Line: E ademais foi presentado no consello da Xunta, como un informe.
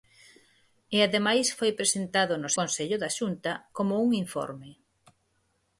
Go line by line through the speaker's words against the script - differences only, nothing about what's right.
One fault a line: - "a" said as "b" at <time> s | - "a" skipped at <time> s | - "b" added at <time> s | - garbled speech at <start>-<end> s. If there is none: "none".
none